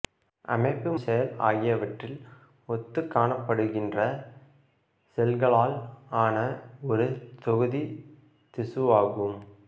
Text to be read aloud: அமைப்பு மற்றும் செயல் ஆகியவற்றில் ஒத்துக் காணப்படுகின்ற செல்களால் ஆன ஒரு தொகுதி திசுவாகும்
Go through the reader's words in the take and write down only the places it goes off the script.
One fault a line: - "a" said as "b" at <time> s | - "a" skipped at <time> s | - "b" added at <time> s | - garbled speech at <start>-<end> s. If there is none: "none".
- "மற்றும்" skipped at 0.9 s